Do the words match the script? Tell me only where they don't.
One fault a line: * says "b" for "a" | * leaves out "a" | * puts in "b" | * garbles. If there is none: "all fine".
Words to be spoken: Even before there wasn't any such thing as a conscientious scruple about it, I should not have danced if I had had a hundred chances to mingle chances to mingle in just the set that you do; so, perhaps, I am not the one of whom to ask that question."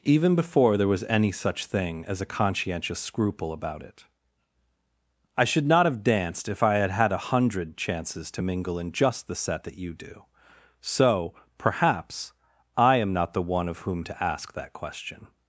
* says "was" for "wasn't"
* leaves out "chances to mingle"